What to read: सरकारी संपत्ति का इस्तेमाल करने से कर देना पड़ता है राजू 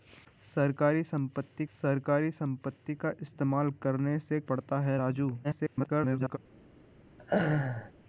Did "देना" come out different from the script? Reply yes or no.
yes